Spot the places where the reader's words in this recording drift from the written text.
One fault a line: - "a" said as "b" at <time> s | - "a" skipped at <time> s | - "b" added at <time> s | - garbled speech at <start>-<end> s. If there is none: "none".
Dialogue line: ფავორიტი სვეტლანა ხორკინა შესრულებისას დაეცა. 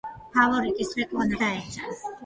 - "ხორკინა შესრულებისას" skipped at 1.4 s